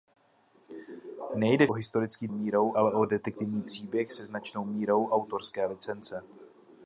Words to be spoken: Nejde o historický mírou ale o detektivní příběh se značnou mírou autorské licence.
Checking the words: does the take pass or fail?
pass